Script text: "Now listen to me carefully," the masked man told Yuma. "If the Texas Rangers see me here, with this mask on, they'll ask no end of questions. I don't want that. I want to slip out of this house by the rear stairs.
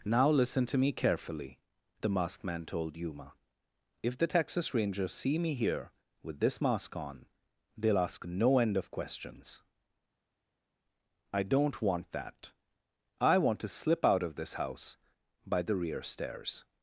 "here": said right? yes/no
yes